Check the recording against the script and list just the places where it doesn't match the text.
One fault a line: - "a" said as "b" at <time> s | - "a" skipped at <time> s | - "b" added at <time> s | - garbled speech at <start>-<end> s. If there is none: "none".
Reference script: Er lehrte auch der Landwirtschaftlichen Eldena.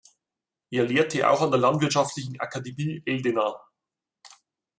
- "an" added at 1.4 s
- "Akademie" added at 2.4 s